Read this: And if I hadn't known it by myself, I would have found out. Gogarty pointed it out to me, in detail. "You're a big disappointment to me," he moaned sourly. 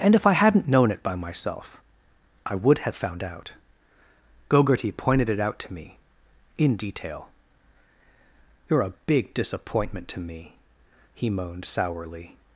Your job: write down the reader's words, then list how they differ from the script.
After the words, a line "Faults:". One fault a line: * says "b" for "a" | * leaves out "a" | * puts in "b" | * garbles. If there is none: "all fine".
And if I hadn't known it by myself, I would have found out. Gogarty pointed it out to me, in detail. "You're a big disappointment to me," he moaned sourly.
Faults:
all fine